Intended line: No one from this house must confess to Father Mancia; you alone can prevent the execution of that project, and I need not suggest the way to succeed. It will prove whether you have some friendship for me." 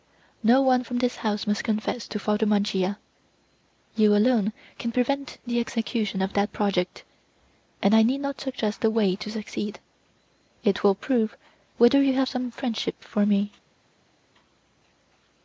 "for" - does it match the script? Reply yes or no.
yes